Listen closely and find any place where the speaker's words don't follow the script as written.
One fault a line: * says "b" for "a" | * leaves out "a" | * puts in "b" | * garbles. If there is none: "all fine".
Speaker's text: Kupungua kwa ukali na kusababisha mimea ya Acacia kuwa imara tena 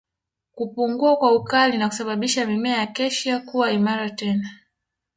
all fine